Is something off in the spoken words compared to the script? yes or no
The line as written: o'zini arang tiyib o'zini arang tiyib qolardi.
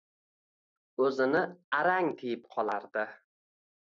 yes